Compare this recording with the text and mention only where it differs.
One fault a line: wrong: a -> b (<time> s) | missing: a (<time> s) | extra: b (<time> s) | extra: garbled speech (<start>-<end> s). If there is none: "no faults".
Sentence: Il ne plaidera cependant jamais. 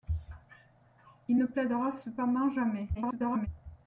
extra: garbled speech (2.9-3.5 s)